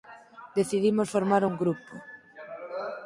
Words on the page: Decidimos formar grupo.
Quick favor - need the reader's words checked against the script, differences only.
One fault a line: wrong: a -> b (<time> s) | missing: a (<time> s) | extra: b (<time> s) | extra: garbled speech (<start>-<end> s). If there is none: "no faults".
extra: un (1.4 s)